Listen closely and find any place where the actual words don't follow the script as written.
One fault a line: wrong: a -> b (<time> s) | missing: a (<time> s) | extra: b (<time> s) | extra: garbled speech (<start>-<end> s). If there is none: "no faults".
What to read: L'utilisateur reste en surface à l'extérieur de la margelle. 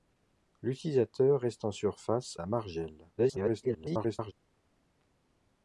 missing: à l'extérieur de (2.4 s)
extra: garbled speech (3.2-4.3 s)